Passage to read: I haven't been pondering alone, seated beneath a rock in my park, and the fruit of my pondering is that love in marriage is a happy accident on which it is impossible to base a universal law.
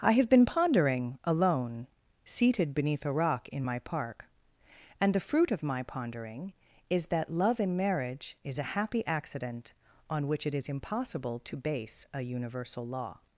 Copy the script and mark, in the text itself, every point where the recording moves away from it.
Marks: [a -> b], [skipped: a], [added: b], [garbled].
I [haven't -> have] been pondering alone, seated beneath a rock in my park, and the fruit of my pondering is that love in marriage is a happy accident on which it is impossible to base a universal law.